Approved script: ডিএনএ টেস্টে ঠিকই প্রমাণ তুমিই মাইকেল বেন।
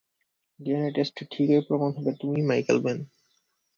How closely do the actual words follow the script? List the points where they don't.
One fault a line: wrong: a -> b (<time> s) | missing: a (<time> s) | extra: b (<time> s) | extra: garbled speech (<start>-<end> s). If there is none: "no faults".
extra: হবে (2.0 s)